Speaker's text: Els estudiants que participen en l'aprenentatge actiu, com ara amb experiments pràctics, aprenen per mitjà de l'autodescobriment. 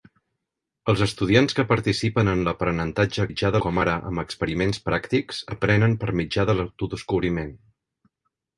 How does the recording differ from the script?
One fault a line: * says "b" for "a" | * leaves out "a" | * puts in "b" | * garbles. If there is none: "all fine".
* says "mitjà" for "actiu"